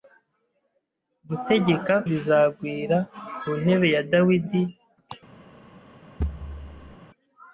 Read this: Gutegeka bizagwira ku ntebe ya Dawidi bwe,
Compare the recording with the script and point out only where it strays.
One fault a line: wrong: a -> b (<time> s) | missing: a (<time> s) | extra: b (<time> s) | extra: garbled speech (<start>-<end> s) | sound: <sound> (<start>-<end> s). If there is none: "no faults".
sound: thud (6.2-7.0 s)